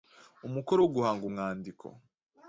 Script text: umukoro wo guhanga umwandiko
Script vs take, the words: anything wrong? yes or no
no